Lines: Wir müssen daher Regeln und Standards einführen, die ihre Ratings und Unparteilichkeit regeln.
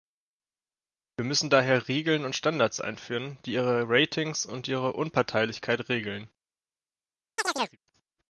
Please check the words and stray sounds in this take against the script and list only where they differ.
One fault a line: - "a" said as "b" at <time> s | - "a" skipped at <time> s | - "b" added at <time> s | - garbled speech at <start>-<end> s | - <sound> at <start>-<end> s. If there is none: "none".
- "ihre" added at 4.7 s
- chirp at 7.4-7.8 s